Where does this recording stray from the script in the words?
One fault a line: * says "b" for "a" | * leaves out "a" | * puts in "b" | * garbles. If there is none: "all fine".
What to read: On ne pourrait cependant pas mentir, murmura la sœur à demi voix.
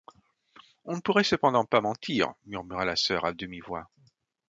all fine